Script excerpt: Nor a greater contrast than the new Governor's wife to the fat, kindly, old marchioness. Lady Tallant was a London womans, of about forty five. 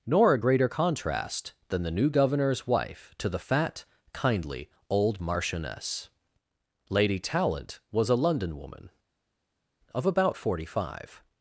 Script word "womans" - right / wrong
wrong